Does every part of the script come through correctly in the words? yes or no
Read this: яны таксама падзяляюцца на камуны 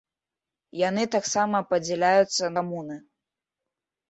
no